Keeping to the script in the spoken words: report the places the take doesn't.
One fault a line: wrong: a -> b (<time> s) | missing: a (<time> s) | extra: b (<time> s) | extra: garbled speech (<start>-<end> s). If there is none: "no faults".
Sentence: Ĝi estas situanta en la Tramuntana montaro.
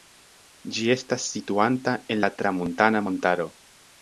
no faults